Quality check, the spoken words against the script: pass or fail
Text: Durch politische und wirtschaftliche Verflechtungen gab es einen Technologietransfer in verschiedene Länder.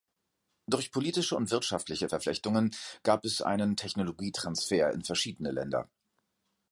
pass